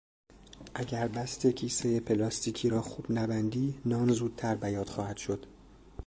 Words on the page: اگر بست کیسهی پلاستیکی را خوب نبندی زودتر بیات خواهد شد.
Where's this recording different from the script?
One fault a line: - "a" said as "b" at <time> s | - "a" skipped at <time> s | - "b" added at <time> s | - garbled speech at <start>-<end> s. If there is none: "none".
- "نان" added at 3.9 s